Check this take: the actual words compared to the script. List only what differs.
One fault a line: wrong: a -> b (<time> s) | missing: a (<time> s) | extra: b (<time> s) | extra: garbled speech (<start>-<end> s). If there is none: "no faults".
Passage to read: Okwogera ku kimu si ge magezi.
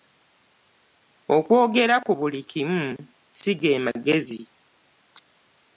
extra: buli (2.2 s)